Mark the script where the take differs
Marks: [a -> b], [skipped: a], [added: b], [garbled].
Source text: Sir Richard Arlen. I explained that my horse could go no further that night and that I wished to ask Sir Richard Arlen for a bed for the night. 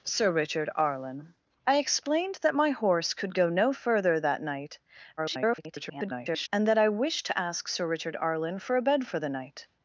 Sir Richard Arlen. I explained that my horse could go no further that night [garbled] and that I wished to ask Sir Richard Arlen for a bed for the night.